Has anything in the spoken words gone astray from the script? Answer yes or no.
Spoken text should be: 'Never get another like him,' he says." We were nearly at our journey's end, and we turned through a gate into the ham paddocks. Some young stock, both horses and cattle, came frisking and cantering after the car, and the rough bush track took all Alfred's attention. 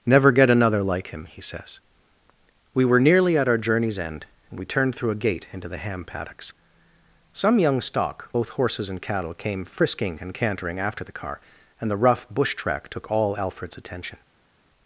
no